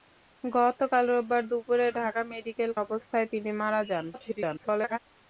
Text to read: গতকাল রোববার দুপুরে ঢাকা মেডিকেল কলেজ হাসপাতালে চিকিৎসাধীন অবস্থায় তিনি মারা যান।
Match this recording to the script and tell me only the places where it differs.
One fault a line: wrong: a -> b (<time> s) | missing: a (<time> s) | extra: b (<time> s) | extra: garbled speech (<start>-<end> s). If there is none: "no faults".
missing: কলেজ হাসপাতালে চিকিৎসাধীন (2.7 s)
extra: garbled speech (4.1-5.0 s)